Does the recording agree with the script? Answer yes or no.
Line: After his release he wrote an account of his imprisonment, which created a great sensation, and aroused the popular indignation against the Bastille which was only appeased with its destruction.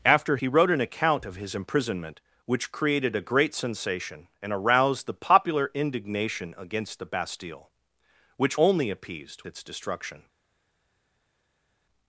no